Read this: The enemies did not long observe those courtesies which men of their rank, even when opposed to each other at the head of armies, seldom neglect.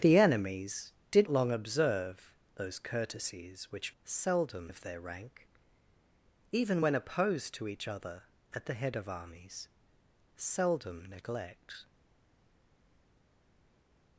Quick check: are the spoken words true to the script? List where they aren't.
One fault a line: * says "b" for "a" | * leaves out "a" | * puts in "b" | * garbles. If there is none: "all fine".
* leaves out "not"
* says "seldom" for "men"